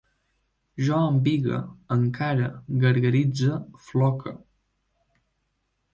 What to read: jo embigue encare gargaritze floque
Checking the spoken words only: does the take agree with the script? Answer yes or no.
yes